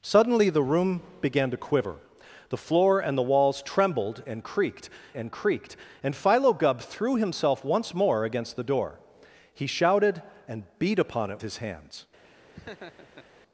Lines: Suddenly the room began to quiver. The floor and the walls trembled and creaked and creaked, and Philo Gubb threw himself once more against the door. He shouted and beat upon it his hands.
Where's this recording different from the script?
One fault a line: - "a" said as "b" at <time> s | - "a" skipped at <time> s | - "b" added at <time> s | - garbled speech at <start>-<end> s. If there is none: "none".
none